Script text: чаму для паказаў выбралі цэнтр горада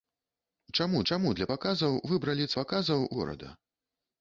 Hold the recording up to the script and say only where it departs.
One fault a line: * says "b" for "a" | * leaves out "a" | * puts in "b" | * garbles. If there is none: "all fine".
* puts in "чаму"
* says "паказаў" for "цэнтр"